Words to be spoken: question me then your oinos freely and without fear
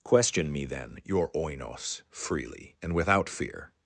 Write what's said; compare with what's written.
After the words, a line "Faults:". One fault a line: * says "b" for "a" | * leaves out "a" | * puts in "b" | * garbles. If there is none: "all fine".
question me then your oinos freely and without fear
Faults:
all fine